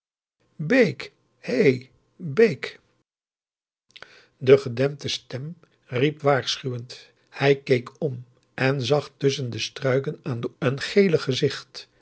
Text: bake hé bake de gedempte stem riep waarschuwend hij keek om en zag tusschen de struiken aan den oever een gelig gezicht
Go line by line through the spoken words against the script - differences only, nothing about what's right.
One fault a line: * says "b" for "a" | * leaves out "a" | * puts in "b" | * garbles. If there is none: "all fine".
* leaves out "oever"